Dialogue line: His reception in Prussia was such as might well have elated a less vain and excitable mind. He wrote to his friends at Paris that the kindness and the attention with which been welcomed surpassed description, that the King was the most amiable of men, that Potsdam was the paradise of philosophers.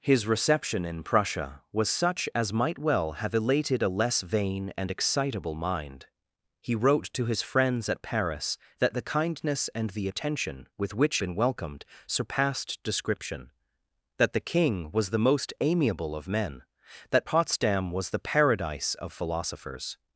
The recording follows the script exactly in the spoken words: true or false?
true